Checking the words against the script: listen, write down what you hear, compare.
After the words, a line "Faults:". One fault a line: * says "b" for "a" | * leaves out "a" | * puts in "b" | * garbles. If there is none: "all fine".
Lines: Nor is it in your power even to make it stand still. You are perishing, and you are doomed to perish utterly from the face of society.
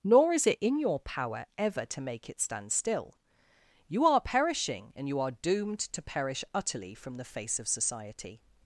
Nor is it in your power ever to make it stand still. You are perishing, and you are doomed to perish utterly from the face of society.
Faults:
* says "ever" for "even"